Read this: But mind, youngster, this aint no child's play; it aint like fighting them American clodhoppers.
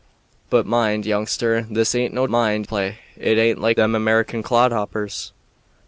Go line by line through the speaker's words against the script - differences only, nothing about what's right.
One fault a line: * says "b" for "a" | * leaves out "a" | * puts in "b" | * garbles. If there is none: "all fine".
* says "mind" for "child's"
* leaves out "fighting"